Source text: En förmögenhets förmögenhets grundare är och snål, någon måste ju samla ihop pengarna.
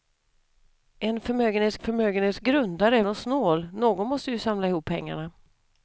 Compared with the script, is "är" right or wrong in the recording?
right